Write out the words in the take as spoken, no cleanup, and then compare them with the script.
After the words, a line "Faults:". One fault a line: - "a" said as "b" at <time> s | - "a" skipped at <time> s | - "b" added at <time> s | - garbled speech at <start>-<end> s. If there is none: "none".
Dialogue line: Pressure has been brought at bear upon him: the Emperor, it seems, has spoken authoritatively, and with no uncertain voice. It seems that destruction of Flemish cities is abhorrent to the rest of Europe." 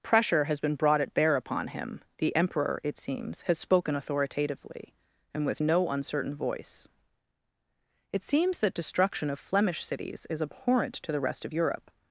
Pressure has been brought at bear upon him: the Emperor, it seems, has spoken authoritatively, and with no uncertain voice. It seems that destruction of Flemish cities is abhorrent to the rest of Europe."
Faults:
none